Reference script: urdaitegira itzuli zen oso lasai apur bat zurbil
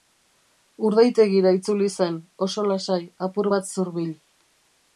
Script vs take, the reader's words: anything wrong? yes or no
no